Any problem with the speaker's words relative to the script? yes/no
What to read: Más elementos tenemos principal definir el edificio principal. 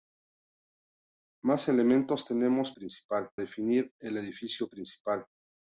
no